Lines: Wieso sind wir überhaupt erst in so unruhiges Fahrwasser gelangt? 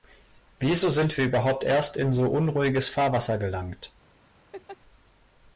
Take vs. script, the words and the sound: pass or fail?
fail